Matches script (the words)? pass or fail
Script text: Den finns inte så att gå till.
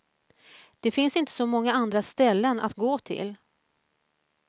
fail